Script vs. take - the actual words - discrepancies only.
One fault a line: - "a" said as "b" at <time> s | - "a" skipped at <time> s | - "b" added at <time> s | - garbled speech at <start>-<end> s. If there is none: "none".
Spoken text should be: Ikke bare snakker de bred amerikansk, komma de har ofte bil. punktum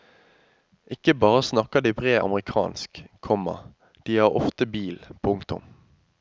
none